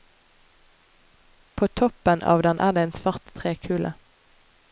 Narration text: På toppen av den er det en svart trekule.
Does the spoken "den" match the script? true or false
true